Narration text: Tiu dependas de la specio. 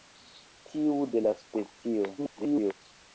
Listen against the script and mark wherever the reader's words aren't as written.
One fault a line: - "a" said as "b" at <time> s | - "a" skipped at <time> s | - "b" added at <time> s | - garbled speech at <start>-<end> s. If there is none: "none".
- "dependas" skipped at 0.9 s
- garbled speech at 2.2-2.7 s